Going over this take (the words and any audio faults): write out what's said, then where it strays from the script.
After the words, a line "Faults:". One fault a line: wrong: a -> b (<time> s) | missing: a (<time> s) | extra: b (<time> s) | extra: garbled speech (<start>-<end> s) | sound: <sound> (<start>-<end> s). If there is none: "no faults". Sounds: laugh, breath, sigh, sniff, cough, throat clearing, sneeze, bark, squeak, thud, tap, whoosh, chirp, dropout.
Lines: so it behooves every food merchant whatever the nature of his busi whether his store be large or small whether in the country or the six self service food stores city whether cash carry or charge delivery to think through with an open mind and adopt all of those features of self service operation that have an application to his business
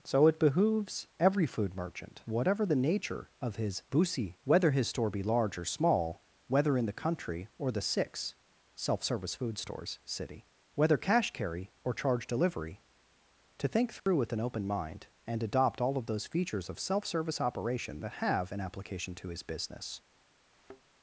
so it behooves every food merchant whatever the nature of his busi whether his store be large or small whether in the country or the six self service food stores city whether cash carry or charge delivery to think through with an open mind and adopt all of those features of self service operation that have an application to his business
Faults:
sound: dropout (14.0-14.1 s)
sound: thud (20.5-20.8 s)